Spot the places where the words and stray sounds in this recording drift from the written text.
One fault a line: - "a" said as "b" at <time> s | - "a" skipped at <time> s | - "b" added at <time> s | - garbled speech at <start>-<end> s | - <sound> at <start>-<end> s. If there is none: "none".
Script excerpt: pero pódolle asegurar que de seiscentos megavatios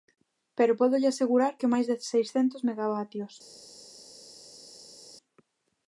- "máis" added at 1.7 s